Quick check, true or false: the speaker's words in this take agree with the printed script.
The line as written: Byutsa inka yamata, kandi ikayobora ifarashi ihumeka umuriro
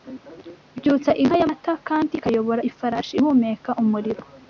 true